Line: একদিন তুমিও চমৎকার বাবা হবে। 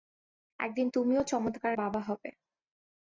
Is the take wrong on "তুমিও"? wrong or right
right